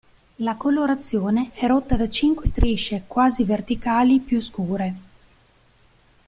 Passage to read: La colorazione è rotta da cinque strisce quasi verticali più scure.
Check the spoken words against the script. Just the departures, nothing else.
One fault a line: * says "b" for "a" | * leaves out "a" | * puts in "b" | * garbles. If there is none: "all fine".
all fine